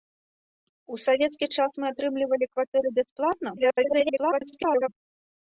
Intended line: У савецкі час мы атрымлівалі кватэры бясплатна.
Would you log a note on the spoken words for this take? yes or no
yes